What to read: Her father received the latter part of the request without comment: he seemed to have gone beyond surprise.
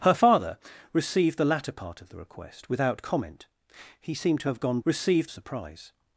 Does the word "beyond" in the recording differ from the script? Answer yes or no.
yes